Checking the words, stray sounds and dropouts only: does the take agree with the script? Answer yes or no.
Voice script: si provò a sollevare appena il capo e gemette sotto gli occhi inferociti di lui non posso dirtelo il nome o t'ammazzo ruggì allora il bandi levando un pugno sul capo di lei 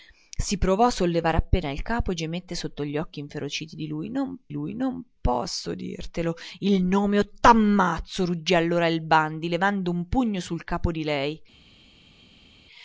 no